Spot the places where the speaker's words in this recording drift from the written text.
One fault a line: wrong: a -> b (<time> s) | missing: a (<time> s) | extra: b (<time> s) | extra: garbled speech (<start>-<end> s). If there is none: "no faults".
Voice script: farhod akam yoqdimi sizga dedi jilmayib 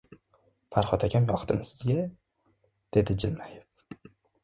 no faults